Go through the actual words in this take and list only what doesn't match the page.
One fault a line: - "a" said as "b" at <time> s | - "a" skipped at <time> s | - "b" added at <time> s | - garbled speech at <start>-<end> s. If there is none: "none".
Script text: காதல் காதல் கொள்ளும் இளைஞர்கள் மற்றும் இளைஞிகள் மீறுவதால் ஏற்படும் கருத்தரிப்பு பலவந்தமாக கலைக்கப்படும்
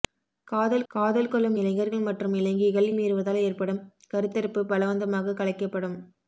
none